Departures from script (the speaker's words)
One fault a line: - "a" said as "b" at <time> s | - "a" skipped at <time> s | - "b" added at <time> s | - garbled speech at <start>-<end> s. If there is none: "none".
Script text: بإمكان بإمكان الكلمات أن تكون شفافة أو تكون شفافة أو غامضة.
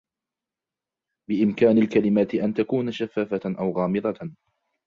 - "بإمكان" skipped at 1.8 s
- "تكون شفافة أو" skipped at 3.7 s